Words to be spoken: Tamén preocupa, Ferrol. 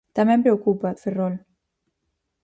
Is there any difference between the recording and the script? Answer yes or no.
no